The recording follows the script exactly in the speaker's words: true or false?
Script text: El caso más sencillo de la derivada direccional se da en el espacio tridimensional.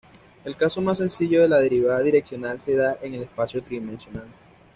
true